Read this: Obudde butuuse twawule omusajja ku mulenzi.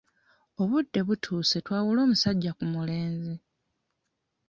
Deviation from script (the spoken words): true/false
false